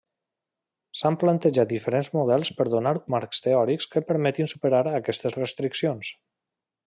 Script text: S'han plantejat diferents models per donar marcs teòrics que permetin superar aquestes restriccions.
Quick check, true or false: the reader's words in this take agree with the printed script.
true